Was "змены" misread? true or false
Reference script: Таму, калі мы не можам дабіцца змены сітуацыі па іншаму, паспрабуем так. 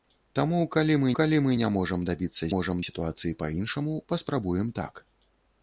true